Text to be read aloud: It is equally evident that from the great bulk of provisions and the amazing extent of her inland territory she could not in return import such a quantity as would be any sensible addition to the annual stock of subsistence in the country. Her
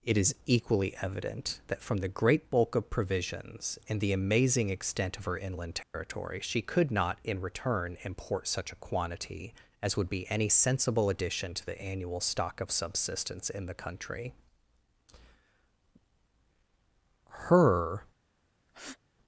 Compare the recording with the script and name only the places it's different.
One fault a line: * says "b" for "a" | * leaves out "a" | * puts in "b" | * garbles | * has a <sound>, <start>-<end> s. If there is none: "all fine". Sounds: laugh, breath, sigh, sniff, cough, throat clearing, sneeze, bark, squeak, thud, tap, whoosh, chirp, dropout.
* has a dropout, 5.8-5.9 s
* has a breath, 18.7-19.0 s